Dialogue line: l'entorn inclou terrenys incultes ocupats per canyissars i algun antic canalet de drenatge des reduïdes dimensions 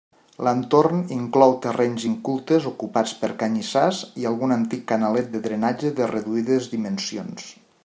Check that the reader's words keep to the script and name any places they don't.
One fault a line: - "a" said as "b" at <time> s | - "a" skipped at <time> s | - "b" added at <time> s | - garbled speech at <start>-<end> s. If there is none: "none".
- "des" said as "de" at 6.0 s